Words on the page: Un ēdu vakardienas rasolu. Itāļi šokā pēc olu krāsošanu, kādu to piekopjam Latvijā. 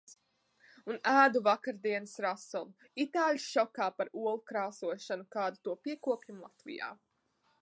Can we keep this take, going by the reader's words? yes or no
no